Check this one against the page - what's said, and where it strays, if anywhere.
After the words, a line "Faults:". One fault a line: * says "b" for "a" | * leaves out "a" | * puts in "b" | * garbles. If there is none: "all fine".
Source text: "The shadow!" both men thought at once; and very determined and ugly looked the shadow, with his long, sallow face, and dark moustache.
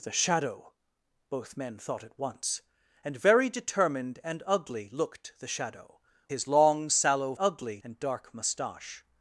"The shadow!" both men thought at once; and very determined and ugly looked the shadow, his long, sallow ugly, and dark moustache.
Faults:
* leaves out "with"
* says "ugly" for "face"